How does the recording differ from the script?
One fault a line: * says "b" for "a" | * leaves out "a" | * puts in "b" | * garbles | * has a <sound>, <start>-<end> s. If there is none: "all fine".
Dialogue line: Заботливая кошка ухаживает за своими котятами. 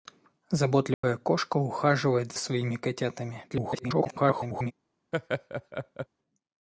* has a dropout, 0.9-1.0 s
* leaves out "за"
* garbles
* has a laugh, 5.1-6.1 s